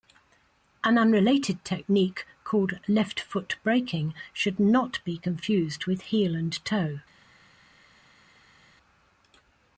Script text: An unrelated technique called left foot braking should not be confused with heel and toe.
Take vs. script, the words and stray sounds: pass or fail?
pass